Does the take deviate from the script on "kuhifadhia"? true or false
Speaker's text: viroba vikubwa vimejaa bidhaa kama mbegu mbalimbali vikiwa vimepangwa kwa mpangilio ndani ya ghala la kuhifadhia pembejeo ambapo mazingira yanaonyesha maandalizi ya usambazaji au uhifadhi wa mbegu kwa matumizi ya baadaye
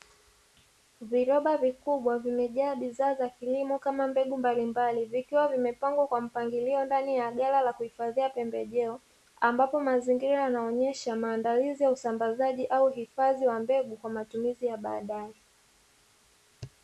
false